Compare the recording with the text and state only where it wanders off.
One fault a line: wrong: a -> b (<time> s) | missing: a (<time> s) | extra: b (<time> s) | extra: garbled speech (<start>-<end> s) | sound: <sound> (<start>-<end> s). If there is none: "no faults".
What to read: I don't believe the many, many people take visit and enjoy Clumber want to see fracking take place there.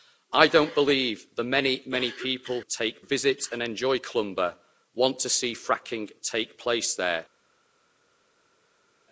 no faults